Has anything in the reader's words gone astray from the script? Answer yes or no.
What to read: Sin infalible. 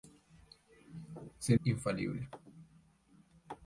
no